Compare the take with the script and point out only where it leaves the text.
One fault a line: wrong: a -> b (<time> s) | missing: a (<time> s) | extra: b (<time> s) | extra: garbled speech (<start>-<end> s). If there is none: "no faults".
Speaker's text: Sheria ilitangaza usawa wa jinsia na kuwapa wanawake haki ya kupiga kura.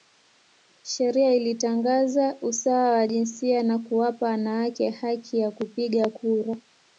no faults